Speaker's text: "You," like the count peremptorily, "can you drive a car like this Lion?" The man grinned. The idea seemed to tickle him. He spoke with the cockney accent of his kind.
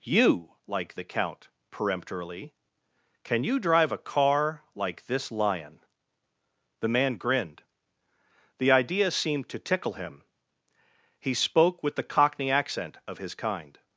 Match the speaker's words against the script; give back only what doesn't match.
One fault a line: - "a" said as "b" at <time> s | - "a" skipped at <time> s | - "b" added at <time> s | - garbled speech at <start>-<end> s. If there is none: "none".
none